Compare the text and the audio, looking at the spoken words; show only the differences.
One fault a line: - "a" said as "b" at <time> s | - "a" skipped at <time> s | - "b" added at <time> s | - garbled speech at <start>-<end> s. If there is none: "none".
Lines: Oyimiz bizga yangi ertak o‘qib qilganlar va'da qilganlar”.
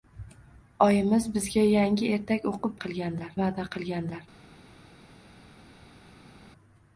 none